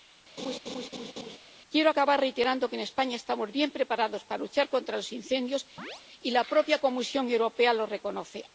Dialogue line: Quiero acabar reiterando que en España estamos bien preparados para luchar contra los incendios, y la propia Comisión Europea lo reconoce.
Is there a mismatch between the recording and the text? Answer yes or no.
no